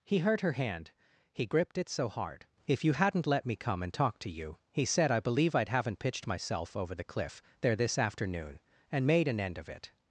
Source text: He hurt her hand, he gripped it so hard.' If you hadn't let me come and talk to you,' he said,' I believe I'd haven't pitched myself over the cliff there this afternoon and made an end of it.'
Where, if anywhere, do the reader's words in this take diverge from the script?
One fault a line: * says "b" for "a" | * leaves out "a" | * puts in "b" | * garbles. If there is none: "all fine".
all fine